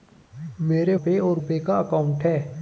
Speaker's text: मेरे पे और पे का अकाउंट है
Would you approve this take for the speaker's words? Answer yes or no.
yes